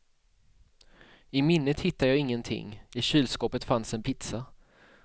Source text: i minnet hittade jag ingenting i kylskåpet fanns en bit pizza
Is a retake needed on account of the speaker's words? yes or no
yes